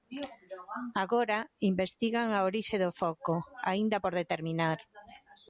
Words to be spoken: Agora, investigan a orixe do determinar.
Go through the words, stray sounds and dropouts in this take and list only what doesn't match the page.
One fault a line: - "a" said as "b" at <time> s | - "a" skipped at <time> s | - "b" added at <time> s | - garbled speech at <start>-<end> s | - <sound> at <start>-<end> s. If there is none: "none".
- "foco aínda por" added at 3.0 s